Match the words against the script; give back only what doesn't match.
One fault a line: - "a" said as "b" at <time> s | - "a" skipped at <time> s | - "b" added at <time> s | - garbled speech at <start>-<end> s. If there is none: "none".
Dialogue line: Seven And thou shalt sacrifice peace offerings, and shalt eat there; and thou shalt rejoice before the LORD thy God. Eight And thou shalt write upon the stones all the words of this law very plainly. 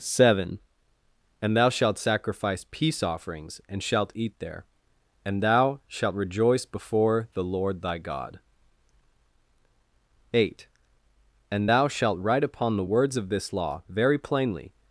- "stones all the" skipped at 12.8 s